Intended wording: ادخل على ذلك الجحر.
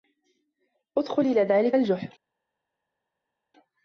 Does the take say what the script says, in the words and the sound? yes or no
no